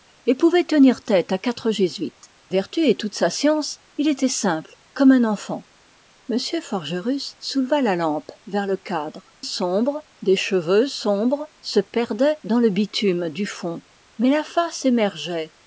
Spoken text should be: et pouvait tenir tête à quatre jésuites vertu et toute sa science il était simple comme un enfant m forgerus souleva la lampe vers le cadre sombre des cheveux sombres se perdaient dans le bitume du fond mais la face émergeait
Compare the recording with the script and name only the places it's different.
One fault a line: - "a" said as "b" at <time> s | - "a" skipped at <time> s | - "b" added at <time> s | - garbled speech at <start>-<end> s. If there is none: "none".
none